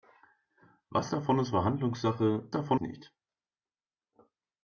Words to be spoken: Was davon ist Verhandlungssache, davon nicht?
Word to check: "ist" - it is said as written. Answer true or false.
true